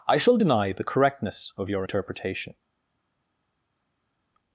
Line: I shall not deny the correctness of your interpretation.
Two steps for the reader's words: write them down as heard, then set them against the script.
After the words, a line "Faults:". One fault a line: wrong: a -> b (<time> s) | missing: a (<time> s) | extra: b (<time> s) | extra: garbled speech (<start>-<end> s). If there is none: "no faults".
I shall deny the correctness of your interpretation.
Faults:
missing: not (0.4 s)